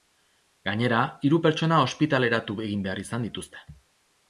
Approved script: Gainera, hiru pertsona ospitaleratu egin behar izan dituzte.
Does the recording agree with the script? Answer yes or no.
yes